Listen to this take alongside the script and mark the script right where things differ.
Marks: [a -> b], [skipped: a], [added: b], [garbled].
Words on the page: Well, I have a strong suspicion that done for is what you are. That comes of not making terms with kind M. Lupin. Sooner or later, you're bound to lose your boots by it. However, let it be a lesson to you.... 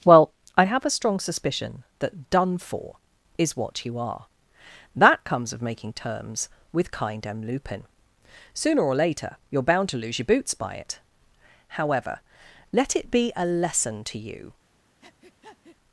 Well, I have a strong suspicion that done for is what you are. That comes of [skipped: not] making terms with kind M. Lupin. Sooner or later, you're bound to lose your boots by it. However, let it be a lesson to you....